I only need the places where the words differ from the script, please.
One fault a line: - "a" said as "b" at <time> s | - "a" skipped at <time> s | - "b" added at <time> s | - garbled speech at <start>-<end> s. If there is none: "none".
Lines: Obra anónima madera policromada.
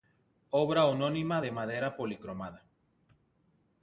- "de" added at 1.4 s